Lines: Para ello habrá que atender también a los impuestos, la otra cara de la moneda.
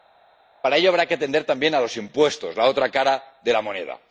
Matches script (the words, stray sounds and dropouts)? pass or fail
pass